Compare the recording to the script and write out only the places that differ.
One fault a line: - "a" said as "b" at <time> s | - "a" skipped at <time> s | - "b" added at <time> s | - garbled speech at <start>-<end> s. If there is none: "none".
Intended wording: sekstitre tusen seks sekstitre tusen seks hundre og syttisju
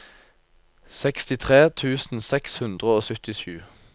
- "sekstitre tusen seks" skipped at 2.6 s